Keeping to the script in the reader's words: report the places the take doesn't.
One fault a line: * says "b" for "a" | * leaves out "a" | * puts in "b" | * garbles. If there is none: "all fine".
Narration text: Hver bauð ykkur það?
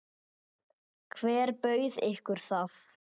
all fine